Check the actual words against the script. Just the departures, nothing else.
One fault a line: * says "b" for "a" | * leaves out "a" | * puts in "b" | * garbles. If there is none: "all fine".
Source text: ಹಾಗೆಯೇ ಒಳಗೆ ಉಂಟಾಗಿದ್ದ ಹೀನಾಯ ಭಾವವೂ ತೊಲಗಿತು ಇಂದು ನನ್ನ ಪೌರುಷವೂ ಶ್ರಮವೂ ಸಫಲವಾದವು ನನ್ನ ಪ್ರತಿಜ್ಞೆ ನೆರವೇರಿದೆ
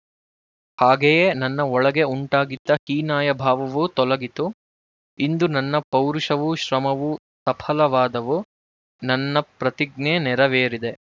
* puts in "ನನ್ನ"